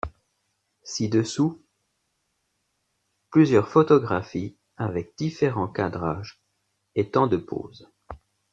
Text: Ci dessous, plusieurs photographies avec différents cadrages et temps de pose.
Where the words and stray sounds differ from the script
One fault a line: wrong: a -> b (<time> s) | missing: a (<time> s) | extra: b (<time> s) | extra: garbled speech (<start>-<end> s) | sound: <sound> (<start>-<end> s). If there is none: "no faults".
no faults